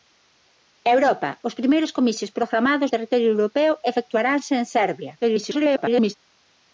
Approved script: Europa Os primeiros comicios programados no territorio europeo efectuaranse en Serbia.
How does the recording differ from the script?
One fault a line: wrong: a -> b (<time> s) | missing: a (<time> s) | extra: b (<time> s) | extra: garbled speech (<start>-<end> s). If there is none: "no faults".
missing: no (2.9 s)
extra: garbled speech (5.2-6.1 s)